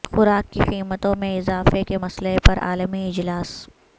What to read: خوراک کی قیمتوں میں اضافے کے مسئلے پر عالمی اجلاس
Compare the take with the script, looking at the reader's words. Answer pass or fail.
pass